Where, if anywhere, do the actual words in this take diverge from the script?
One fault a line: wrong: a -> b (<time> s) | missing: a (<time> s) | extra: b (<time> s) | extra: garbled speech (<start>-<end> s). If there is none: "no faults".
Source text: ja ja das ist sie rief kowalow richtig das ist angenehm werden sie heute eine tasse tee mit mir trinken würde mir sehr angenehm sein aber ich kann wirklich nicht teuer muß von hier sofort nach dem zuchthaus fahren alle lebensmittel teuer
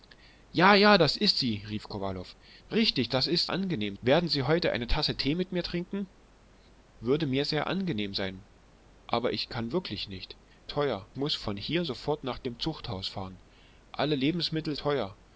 no faults